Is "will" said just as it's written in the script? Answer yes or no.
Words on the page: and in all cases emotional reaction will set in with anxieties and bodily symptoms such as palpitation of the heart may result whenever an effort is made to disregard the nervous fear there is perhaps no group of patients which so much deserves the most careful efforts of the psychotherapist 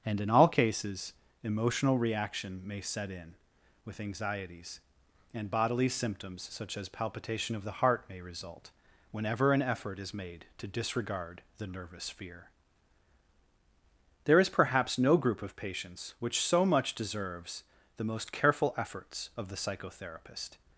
no